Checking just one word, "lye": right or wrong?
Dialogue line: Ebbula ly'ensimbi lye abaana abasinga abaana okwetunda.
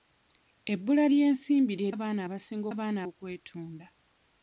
right